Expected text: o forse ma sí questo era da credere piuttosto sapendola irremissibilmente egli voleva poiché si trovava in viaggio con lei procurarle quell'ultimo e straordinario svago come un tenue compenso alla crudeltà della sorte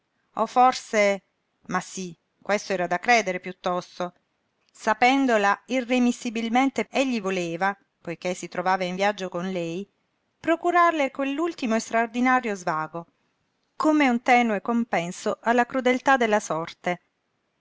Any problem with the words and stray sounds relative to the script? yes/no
no